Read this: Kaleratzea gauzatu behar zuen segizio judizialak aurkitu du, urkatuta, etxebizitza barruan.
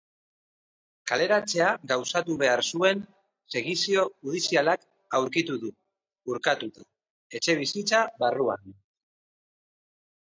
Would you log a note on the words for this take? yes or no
no